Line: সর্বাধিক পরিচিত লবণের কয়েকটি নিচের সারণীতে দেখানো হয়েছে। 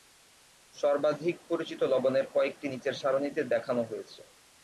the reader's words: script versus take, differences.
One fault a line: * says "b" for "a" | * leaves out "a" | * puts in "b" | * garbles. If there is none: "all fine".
all fine